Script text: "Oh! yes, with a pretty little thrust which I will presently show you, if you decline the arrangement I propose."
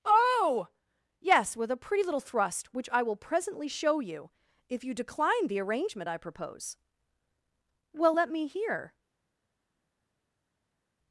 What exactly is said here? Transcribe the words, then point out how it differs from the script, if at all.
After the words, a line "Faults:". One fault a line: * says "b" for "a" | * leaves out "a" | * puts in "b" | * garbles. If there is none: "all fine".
"Oh! yes, with a pretty little thrust which I will presently show you, if you decline the arrangement I propose." "Well, let me hear
Faults:
* puts in "Well let me hear"